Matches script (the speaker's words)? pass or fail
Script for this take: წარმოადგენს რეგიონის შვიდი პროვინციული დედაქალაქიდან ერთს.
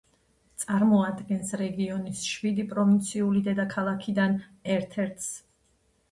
fail